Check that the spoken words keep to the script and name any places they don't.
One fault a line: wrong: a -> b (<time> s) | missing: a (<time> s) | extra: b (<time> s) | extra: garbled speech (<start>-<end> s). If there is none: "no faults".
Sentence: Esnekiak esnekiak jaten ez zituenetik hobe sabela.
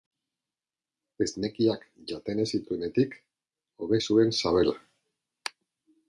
missing: esnekiak (1.8 s)
extra: zuen (4.1 s)